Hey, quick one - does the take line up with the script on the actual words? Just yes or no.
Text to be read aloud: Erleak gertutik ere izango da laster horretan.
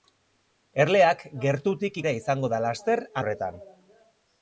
yes